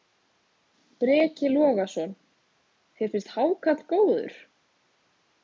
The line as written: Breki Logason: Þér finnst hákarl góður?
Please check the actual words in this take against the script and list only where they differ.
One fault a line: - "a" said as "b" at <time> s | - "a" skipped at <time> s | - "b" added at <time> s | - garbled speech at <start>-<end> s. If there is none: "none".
none